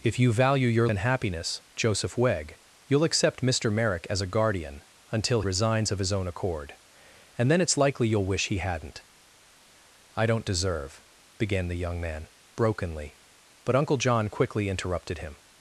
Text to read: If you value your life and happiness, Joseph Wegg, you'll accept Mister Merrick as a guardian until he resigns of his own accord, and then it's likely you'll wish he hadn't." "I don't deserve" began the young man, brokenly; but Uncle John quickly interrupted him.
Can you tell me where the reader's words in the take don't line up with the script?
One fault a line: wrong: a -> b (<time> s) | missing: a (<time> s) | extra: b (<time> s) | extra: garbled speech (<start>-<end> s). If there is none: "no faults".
missing: life (0.9 s)
missing: he (5.4 s)